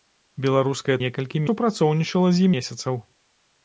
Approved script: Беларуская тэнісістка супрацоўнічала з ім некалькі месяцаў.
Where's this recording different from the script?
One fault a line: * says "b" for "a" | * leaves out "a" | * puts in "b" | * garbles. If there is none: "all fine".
* says "некалькі" for "тэнісістка"
* leaves out "ім некалькі"